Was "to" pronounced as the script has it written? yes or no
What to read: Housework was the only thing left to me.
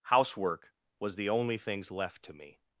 yes